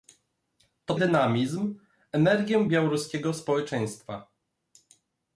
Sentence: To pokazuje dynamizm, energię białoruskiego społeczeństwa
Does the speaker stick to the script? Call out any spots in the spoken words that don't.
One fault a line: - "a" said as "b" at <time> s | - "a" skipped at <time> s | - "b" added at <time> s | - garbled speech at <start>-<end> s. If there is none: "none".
- "pokazuje" skipped at 0.9 s